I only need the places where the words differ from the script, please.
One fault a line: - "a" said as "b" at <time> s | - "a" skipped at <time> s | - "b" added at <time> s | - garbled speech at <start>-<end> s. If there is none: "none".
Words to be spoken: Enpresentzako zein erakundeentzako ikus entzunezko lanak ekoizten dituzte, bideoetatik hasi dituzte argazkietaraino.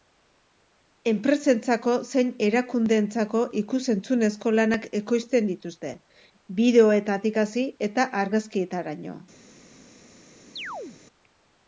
- "dituzte" said as "eta" at 7.9 s